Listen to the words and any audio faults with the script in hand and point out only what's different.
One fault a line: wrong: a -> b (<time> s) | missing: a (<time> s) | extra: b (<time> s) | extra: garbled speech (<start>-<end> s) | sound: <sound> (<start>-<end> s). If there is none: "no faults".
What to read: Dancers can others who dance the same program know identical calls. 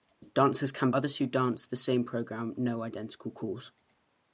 no faults